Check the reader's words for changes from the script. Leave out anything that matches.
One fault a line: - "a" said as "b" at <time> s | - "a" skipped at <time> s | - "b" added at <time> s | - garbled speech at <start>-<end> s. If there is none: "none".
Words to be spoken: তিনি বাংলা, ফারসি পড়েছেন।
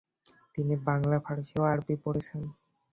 - "ও আরবি" added at 1.6 s